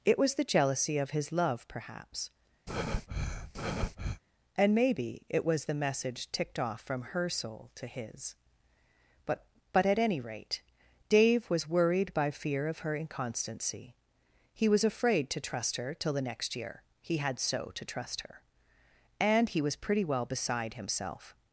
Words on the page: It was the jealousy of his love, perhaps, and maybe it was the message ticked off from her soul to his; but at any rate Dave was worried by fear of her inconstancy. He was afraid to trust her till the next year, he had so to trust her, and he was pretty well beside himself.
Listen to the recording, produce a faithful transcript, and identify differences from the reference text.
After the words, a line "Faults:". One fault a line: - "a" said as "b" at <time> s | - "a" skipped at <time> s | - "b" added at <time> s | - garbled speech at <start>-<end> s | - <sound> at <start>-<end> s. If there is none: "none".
It was the jealousy of his love, perhaps, and maybe it was the message ticked off from her soul to his; but but at any rate Dave was worried by fear of her inconstancy. He was afraid to trust her till the next year, he had so to trust her, and he was pretty well beside himself.
Faults:
- breath at 2.7-4.2 s
- "but" added at 9.7 s